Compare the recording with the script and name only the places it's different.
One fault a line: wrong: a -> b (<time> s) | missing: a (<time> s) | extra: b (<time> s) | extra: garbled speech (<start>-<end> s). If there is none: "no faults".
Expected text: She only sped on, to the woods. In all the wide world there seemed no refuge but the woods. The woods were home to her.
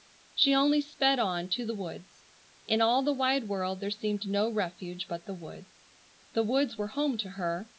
no faults